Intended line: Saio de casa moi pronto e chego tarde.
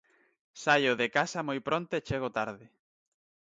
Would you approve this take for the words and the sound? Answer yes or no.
yes